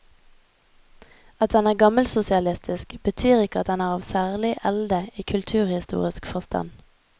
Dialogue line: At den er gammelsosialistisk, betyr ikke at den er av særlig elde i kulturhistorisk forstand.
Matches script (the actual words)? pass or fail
pass